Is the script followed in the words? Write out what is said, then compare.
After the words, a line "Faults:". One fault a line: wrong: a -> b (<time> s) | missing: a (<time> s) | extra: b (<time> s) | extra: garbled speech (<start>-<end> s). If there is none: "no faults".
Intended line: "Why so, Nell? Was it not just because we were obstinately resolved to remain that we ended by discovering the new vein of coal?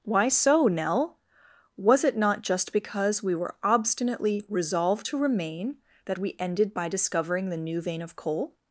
"Why so, Nell? Was it not just because we were obstinately resolved to remain that we ended by discovering the new vein of coal?
Faults:
no faults